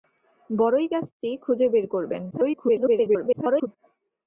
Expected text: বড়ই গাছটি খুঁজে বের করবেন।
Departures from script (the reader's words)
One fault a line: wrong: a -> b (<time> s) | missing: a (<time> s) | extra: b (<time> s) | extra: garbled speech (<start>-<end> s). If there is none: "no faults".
extra: garbled speech (2.3-3.7 s)